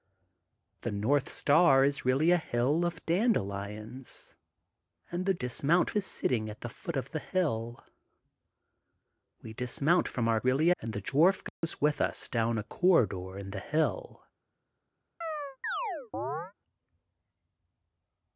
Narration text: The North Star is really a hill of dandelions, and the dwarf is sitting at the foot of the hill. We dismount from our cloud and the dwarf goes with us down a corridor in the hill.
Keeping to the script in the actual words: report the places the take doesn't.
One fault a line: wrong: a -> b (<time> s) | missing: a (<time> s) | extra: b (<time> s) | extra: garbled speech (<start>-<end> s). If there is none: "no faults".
wrong: dwarf -> dismount (5.3 s)
wrong: cloud -> really (10.4 s)